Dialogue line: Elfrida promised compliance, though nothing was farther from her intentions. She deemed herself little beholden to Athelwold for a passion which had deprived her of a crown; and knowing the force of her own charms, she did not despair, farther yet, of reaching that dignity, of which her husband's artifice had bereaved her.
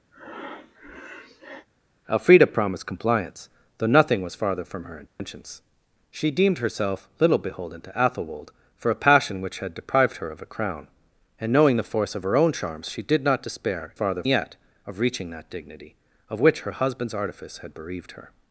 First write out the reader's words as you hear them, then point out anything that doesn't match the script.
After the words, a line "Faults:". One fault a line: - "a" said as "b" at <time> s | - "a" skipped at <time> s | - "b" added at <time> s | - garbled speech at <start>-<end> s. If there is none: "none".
Elfrida promised compliance, though nothing was farther from her intentions. She deemed herself little beholden to Athelwold for a passion which had deprived her of a crown; and knowing the force of her own charms, she did not despair, farther yet, of reaching that dignity, of which her husband's artifice had bereaved her.
Faults:
none